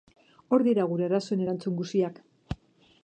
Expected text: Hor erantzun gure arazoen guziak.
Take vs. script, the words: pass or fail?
fail